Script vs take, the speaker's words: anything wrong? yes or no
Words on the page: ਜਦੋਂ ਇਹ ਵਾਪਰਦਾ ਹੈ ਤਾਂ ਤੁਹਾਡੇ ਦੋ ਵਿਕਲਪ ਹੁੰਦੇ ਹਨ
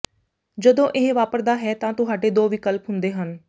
no